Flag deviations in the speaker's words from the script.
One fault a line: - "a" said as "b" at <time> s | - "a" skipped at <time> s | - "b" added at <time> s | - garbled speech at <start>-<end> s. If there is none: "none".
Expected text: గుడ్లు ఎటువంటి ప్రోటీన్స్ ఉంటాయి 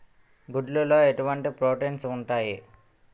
- "లో" added at 0.8 s